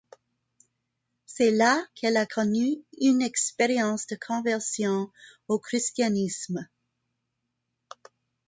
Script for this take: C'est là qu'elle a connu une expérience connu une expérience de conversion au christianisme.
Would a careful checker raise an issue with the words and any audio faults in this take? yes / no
yes